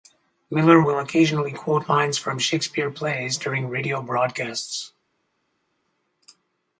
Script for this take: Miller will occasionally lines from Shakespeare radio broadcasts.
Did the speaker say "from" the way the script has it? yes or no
yes